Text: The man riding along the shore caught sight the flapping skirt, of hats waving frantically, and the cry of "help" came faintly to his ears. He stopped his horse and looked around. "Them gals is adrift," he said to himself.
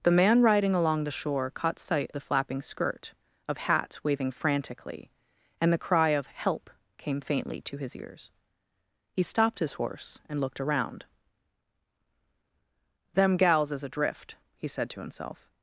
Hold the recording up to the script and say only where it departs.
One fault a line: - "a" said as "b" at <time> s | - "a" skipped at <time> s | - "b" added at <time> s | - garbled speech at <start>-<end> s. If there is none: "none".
none